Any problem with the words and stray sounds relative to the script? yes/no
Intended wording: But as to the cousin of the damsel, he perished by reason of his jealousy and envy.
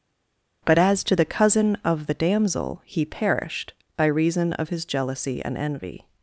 no